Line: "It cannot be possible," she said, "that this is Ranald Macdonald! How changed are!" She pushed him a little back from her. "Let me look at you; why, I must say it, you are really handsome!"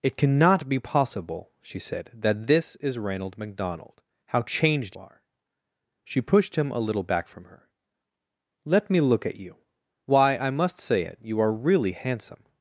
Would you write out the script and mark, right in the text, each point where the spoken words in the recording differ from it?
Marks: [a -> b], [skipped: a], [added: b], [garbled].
"It cannot be possible," she said, "that this is Ranald Macdonald! How changed are!" She pushed him a little back from her. "Let me look at you; why, I must say it, you are really handsome!"